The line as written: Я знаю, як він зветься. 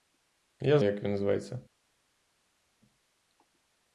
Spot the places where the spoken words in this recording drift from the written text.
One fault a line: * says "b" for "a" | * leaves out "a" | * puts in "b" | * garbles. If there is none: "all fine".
* leaves out "знаю"